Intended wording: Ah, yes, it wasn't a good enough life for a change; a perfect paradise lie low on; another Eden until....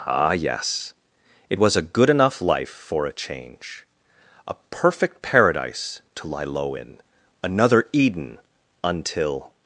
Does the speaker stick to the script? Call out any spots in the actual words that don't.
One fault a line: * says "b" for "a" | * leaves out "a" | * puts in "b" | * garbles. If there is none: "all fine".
* says "was" for "wasn't"
* puts in "to"
* says "in" for "on"